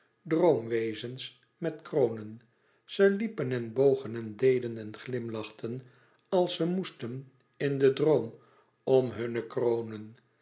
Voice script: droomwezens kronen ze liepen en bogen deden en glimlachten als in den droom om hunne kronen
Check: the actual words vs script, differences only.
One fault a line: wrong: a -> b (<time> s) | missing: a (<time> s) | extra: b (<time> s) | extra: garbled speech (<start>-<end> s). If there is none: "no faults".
extra: met (1.6 s)
extra: en (4.2 s)
extra: ze moesten (6.5 s)